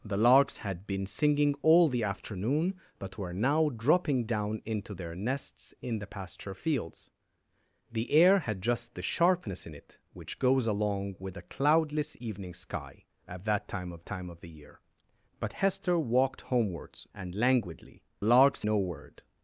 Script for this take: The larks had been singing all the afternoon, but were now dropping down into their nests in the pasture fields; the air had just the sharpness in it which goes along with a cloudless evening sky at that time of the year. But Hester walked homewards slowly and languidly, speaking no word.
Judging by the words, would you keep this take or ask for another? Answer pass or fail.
fail